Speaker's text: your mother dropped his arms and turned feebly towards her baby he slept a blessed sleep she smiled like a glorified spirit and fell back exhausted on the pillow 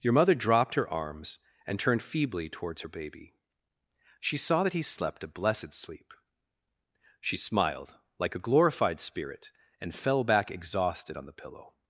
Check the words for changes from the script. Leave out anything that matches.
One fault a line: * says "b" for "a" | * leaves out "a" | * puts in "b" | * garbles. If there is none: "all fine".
* says "her" for "his"
* puts in "she saw that"